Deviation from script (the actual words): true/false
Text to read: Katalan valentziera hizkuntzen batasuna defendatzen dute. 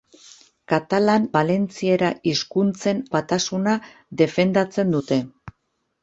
false